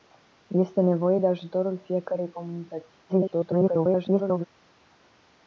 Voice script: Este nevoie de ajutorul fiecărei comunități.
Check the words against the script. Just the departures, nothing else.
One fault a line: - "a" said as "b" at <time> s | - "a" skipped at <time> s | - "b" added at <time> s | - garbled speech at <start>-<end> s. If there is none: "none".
- garbled speech at 3.1-4.4 s